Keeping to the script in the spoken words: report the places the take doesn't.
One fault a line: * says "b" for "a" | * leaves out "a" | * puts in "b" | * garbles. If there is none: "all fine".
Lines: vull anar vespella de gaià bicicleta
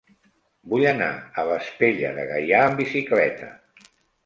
* puts in "a"
* puts in "amb"